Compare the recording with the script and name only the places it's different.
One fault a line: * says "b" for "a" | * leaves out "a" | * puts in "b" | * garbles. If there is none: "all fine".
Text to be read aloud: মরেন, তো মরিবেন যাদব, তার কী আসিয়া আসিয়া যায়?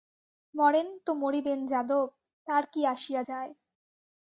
* leaves out "আসিয়া"